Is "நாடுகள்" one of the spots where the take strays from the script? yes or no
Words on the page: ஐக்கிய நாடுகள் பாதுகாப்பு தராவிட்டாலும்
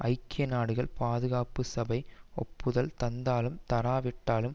no